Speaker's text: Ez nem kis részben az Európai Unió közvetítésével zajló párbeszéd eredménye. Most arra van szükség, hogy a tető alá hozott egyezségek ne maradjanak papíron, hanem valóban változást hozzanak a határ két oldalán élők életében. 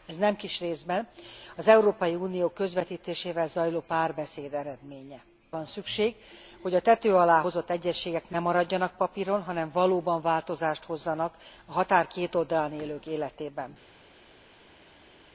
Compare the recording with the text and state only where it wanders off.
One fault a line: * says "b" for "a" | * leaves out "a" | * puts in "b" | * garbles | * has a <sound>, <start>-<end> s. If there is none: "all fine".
* leaves out "Most arra"